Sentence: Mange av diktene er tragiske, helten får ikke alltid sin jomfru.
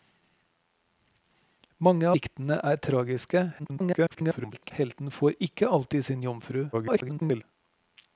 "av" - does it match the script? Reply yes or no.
no